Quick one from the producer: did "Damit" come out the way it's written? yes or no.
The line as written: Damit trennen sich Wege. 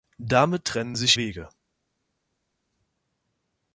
yes